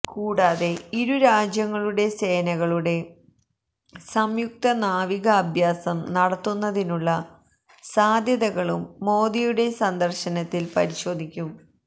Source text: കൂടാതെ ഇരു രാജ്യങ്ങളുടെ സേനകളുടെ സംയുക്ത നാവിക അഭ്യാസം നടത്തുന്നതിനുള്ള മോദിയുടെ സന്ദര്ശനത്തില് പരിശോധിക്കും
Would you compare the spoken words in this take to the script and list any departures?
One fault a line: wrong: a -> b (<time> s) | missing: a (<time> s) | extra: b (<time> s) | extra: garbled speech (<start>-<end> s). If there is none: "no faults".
extra: സാധ്യതകളും (7.8 s)